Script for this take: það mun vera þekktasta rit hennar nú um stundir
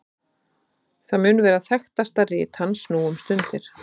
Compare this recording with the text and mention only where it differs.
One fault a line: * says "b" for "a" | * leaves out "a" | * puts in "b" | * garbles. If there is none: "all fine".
* says "hans" for "hennar"